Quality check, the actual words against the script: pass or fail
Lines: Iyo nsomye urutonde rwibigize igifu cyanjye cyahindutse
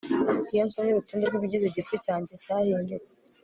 pass